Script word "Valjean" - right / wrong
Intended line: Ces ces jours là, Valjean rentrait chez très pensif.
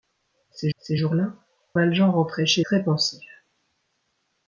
right